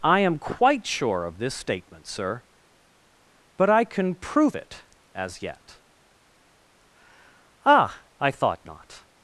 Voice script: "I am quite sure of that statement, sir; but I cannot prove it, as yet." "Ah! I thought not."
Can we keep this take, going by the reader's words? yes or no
no